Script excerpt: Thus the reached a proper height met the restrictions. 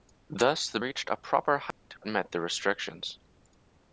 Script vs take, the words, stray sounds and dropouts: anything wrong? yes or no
yes